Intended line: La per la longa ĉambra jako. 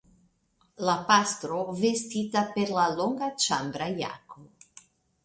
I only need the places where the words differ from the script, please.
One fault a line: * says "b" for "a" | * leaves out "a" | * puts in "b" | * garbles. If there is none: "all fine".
* puts in "pastro vestita"